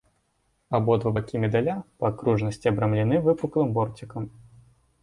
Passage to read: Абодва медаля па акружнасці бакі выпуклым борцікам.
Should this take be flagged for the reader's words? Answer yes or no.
yes